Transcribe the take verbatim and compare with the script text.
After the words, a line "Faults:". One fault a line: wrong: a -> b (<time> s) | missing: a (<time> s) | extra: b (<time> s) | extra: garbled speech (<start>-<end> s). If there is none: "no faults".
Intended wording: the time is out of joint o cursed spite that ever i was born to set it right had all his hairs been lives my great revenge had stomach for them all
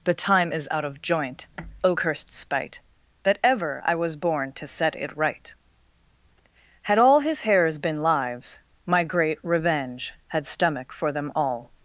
the time is out of joint o cursed spite that ever i was born to set it right had all his hairs been lives my great revenge had stomach for them all
Faults:
no faults